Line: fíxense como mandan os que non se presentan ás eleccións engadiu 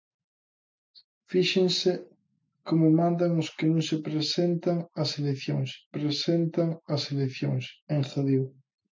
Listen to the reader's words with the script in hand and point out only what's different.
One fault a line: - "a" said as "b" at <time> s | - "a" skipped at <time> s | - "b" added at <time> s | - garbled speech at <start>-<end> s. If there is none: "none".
- "presentan ás eleccións" added at 6.0 s